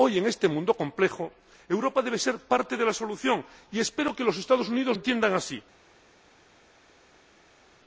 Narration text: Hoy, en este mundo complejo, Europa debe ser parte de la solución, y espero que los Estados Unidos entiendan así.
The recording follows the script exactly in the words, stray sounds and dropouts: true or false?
true